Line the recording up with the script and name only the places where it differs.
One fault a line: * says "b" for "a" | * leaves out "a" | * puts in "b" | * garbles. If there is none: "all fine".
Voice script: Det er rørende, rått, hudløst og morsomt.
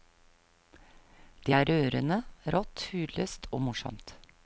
all fine